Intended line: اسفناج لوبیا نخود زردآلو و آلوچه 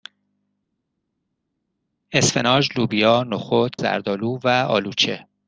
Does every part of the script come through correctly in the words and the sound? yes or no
yes